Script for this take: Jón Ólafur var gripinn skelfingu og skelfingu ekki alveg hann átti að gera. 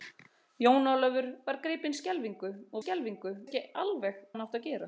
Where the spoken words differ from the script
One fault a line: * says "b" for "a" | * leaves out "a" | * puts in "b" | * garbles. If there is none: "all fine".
all fine